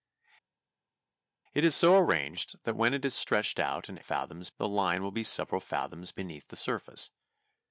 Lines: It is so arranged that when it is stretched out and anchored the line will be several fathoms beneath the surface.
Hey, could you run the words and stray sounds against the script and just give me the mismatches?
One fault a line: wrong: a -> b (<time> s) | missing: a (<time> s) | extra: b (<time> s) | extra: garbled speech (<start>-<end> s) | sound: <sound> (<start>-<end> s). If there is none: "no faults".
wrong: anchored -> fathoms (4.0 s)